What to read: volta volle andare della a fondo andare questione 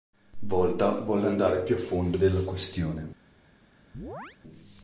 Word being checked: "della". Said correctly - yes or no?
no